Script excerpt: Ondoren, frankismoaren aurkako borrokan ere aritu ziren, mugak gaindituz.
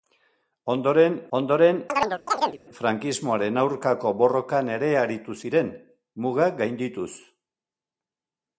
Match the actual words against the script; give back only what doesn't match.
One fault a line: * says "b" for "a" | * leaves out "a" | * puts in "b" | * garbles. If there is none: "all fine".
* puts in "ondoren"